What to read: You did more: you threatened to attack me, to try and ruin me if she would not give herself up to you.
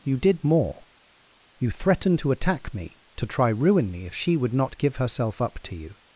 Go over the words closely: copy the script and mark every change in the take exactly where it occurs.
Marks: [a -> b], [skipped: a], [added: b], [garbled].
You did more: you threatened to attack me, to try [skipped: and] ruin me if she would not give herself up to you.